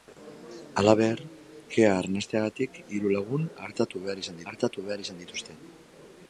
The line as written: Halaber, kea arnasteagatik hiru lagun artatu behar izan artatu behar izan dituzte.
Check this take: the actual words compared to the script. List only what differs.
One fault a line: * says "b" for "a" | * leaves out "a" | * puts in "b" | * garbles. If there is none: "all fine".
all fine